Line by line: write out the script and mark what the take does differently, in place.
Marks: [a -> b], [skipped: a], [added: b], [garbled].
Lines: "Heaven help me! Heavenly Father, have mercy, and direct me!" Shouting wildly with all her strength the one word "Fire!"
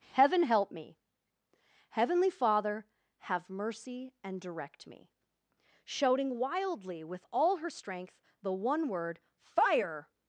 "Heaven help me! Heavenly Father, have mercy, and direct me!" Shouting wildly with all her strength the one word "Fire!"